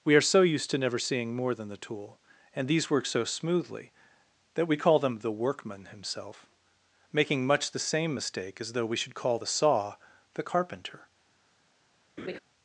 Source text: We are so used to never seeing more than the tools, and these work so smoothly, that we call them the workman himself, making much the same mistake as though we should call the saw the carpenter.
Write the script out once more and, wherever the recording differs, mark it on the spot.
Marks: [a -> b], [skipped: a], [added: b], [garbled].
We are so used to never seeing more than the [tools, -> tool] and these work so smoothly, that we call them the workman himself, making much the same mistake as though we should call the saw the carpenter.